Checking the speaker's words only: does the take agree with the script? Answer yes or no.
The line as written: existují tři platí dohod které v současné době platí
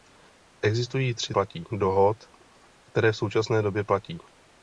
yes